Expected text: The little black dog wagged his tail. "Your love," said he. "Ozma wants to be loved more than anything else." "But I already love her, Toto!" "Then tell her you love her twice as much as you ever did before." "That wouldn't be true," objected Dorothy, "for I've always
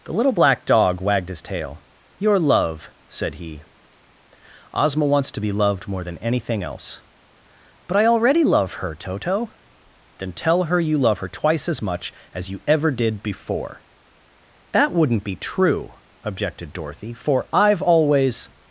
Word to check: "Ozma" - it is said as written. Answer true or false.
true